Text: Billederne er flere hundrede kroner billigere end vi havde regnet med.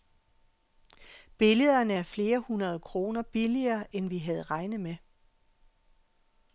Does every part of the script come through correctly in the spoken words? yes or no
yes